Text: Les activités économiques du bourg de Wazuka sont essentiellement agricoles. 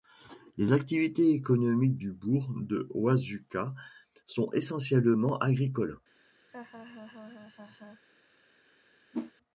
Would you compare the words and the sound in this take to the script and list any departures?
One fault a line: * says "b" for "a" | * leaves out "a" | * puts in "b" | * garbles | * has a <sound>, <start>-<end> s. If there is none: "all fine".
* has a laugh, 6.5-8.0 s
* has a whoosh, 9.1-9.3 s